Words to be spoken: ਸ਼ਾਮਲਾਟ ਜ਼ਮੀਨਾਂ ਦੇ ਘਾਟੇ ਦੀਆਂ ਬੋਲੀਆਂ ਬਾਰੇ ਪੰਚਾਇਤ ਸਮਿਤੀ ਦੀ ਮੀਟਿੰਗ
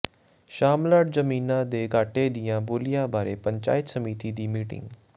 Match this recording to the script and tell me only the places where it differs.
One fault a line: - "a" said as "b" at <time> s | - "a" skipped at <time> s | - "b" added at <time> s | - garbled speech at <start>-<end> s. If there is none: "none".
none